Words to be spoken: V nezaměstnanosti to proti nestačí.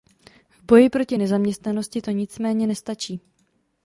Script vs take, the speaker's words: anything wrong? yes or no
yes